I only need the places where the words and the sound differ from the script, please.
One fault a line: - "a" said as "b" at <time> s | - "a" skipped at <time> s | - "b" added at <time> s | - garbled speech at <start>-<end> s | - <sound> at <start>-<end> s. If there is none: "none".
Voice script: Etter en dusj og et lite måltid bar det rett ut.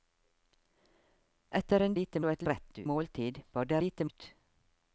- "dusj" said as "lite" at 2.0 s
- "lite" said as "rett" at 2.5 s
- "rett" said as "lite" at 3.8 s